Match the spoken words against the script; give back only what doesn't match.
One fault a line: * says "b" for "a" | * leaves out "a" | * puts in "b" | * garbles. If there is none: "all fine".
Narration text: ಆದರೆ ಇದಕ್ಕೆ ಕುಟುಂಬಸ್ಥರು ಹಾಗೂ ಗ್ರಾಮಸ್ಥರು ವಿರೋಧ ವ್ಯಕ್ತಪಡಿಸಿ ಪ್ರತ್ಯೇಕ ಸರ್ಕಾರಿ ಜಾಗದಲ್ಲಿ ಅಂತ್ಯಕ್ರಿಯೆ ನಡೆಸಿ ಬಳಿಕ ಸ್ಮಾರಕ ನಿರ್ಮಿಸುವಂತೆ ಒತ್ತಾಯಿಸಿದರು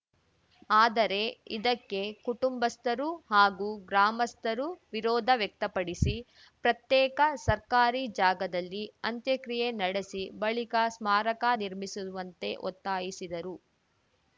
all fine